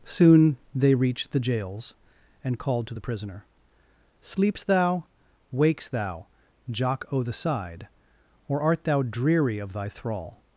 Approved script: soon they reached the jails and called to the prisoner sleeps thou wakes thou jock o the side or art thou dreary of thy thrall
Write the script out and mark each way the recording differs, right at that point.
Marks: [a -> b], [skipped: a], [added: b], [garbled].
soon they reached the jails and called to the prisoner sleeps thou wakes thou jock o the side or art thou dreary of thy thrall